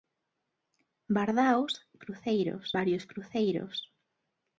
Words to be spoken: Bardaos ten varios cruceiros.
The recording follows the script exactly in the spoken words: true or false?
false